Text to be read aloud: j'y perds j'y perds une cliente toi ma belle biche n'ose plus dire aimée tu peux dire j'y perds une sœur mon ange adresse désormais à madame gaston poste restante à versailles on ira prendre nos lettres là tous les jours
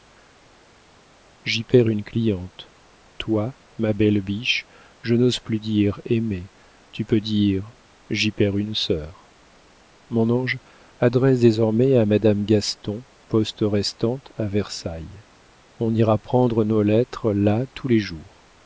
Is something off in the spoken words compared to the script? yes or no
yes